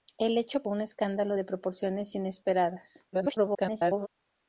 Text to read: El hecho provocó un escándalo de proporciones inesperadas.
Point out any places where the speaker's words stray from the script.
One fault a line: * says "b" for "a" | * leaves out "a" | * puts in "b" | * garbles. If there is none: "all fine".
* leaves out "provocó"
* garbles